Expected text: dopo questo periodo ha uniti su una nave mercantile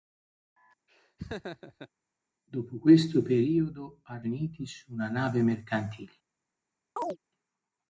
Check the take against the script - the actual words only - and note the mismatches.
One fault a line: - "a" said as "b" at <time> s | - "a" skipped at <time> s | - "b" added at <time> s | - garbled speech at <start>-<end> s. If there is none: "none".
none